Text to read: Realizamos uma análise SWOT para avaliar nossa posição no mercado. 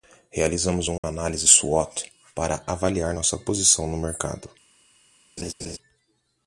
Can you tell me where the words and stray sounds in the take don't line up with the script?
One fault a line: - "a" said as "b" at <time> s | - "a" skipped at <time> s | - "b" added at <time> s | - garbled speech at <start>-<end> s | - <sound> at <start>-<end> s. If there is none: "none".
- dropout at 1.0-1.0 s
- laugh at 5.4-5.8 s